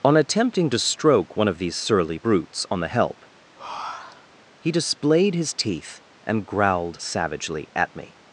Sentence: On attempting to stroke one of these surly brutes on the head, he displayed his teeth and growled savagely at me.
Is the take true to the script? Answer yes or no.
no